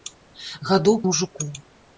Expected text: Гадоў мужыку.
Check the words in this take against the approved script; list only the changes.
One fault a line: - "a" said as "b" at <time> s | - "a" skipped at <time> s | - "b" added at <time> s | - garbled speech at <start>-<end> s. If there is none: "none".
none